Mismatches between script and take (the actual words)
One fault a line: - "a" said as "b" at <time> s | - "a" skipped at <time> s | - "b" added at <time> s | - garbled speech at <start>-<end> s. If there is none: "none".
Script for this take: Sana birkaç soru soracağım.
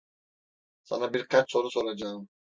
none